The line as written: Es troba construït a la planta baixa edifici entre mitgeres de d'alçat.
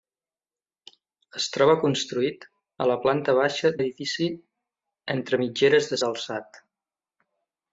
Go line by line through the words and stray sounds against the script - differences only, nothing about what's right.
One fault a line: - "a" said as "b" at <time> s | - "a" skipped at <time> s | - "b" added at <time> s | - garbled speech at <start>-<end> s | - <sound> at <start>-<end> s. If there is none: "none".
none